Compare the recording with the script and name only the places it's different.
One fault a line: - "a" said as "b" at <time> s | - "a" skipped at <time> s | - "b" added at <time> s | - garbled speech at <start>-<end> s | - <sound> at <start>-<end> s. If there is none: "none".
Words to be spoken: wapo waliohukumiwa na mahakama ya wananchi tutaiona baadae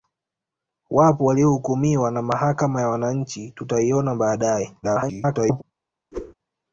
- garbled speech at 4.8-5.6 s
- whoosh at 6.1-6.3 s